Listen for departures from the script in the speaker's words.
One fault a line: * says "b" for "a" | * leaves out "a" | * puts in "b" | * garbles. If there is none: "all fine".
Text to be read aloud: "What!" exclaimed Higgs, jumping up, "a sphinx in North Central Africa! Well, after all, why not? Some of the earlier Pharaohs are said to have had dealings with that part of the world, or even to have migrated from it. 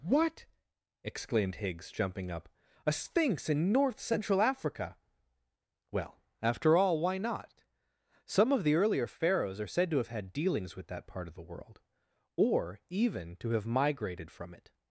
all fine